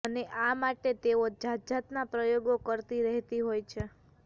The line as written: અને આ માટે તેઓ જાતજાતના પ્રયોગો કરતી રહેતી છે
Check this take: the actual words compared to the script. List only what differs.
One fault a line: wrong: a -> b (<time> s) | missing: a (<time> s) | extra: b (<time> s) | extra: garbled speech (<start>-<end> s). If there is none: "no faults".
extra: હોય (3.4 s)